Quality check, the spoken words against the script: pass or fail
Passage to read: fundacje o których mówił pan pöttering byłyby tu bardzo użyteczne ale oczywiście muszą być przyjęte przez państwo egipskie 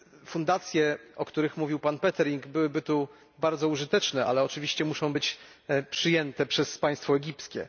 pass